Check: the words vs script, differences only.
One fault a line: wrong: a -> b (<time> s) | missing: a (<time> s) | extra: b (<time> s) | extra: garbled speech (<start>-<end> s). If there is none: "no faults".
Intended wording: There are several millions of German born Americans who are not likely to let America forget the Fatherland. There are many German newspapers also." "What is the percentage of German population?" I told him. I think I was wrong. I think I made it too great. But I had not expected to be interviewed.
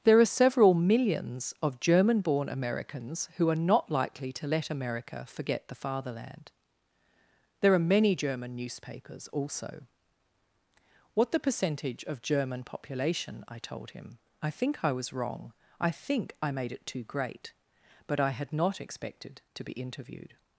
missing: is (11.3 s)